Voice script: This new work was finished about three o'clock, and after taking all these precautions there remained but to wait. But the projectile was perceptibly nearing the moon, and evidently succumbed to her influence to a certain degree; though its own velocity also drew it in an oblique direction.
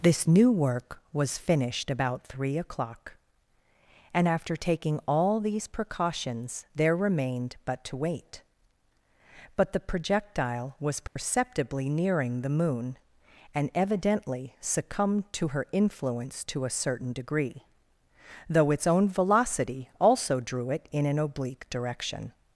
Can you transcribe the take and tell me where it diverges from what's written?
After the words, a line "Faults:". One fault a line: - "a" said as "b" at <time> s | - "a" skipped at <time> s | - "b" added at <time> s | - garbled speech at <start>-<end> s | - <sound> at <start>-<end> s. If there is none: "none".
This new work was finished about three o'clock, and after taking all these precautions there remained but to wait. But the projectile was perceptibly nearing the moon, and evidently succumbed to her influence to a certain degree; though its own velocity also drew it in an oblique direction.
Faults:
- dropout at 11.1-11.2 s